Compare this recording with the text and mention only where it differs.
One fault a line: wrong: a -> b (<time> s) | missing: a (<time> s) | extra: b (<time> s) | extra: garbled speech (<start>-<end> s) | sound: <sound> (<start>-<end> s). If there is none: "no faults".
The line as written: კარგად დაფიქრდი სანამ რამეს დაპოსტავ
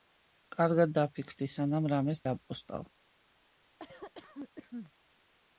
sound: cough (3.8-4.9 s)